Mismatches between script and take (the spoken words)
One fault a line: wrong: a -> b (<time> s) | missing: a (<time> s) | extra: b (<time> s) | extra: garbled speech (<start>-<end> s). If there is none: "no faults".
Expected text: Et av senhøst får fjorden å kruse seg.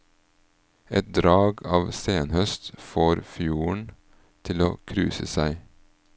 extra: drag (1.2 s)
extra: til (4.5 s)